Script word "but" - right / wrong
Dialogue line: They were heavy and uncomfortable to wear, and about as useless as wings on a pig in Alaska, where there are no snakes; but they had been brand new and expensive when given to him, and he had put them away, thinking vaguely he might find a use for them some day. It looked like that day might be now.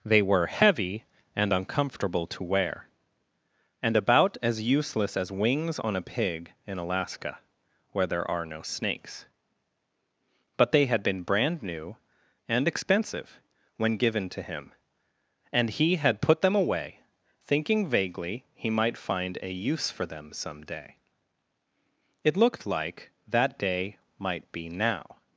right